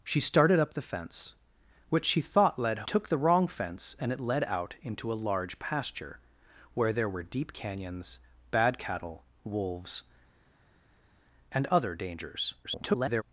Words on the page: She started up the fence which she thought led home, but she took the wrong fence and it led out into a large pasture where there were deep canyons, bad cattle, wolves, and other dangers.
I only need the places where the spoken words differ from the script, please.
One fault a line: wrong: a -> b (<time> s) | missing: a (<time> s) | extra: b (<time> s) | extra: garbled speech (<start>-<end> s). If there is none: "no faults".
missing: home but she (2.9 s)
extra: garbled speech (12.6-13.2 s)